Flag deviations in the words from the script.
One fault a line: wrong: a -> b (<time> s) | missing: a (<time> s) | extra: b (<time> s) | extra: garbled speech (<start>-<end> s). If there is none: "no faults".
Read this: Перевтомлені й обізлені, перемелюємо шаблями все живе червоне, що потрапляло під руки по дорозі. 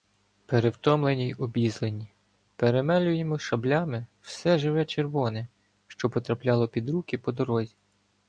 no faults